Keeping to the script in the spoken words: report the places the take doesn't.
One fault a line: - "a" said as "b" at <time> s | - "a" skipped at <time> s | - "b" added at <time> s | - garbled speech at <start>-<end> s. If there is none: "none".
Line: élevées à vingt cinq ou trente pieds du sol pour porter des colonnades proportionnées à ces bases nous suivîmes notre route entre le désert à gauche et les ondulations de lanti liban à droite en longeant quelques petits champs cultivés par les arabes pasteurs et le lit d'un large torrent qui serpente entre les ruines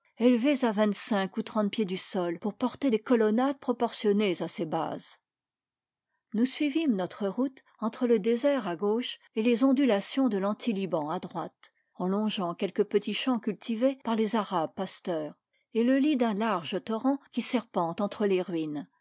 none